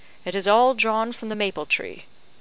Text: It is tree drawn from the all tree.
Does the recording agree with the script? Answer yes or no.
no